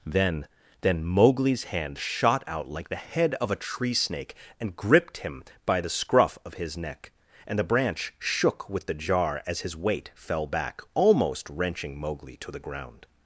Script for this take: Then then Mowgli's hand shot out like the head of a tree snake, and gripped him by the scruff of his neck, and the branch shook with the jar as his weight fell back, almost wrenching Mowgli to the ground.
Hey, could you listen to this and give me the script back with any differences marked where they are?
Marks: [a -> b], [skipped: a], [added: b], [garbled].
Then then Mowgli's hand shot out like the head of a tree snake, and gripped him by the scruff of his neck, and the branch shook with the jar as his weight fell back, almost wrenching Mowgli to the ground.